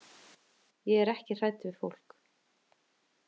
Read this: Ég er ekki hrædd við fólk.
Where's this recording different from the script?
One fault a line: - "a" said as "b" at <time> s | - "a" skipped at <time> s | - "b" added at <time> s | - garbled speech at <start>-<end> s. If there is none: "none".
none